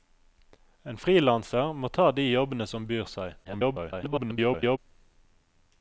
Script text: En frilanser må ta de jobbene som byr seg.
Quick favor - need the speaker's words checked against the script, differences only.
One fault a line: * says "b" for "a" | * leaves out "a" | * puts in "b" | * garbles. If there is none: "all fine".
* garbles